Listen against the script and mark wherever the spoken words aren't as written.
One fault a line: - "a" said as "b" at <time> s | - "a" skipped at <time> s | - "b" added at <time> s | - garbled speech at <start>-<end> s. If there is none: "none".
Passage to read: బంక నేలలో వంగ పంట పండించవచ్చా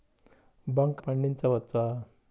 - "నేలలో వంగ పంట" skipped at 1.0 s